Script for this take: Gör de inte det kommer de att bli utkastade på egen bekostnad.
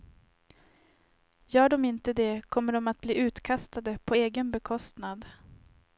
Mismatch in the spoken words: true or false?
false